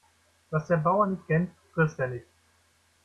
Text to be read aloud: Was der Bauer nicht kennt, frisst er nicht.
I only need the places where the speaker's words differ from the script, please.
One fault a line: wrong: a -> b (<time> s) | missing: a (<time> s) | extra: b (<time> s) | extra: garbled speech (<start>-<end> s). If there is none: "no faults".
no faults